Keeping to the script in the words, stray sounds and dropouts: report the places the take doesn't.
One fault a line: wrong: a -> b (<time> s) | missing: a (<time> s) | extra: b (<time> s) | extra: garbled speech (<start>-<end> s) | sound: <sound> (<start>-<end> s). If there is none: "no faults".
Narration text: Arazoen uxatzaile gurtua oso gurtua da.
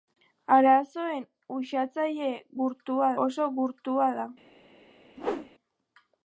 sound: whoosh (5.2-5.5 s)